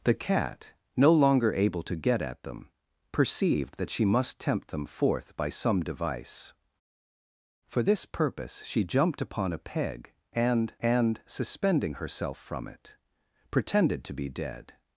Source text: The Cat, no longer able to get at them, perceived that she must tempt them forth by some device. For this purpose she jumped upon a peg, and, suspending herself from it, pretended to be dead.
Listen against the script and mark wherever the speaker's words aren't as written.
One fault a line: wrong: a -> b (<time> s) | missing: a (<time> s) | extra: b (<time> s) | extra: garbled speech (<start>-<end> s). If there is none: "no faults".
extra: and (10.8 s)